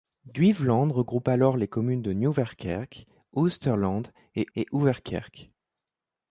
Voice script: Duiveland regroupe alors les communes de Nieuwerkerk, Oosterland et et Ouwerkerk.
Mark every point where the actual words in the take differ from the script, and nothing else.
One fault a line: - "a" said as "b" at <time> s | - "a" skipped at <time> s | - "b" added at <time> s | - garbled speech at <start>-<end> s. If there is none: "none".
none